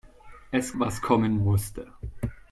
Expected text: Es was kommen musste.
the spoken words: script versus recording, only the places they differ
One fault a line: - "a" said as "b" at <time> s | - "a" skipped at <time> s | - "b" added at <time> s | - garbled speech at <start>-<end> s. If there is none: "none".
none